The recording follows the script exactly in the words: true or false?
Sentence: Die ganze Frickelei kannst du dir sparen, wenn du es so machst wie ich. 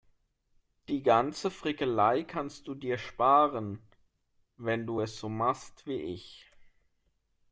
true